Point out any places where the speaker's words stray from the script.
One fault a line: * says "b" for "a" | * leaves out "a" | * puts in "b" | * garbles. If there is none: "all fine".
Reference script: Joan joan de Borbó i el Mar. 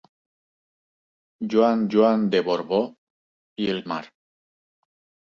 all fine